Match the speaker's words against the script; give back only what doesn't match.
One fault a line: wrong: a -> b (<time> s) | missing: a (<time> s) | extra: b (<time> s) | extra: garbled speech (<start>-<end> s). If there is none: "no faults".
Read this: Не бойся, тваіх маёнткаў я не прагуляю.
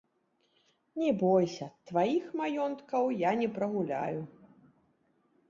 no faults